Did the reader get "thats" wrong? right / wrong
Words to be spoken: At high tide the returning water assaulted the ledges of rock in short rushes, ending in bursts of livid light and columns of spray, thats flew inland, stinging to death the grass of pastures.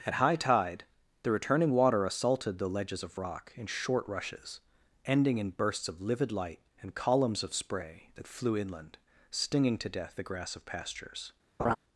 wrong